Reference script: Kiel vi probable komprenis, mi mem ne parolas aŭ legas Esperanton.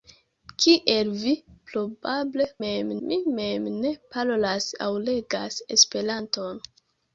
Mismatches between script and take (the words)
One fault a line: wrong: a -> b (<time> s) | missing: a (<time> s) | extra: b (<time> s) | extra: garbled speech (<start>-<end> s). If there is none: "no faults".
wrong: komprenis -> mem (2.6 s)